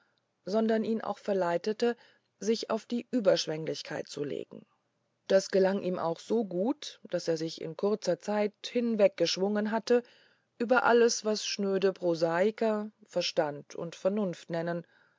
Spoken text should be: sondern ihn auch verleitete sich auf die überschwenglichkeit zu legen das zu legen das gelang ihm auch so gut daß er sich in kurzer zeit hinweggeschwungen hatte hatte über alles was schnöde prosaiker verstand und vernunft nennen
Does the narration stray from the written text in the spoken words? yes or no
yes